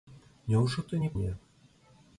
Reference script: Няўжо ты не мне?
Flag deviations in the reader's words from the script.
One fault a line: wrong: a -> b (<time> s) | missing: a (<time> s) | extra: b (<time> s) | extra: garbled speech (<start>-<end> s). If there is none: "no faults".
no faults